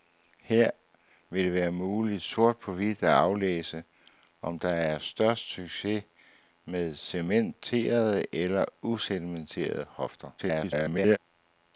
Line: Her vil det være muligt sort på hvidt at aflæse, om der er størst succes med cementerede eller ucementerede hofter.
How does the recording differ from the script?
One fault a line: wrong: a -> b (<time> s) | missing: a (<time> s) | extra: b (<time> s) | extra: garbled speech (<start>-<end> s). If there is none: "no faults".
extra: garbled speech (10.4-11.2 s)